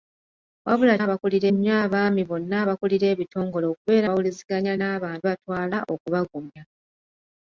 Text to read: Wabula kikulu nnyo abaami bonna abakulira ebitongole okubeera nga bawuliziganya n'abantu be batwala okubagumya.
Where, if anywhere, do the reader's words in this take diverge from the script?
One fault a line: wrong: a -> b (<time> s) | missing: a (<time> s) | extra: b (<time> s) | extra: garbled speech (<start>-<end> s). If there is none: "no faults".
wrong: kikulu -> abakulira (1.0 s)
missing: nga (4.1 s)
missing: be (5.2 s)